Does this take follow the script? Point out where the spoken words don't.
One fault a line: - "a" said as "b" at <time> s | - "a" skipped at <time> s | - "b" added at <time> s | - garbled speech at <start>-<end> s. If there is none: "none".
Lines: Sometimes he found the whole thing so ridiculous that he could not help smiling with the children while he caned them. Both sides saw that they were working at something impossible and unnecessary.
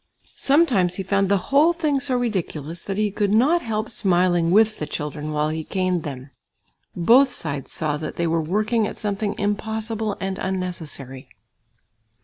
none